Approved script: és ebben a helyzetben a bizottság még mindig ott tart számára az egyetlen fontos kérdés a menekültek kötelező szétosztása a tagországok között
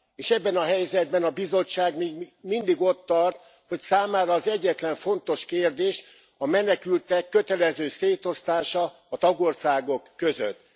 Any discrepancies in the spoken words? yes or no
yes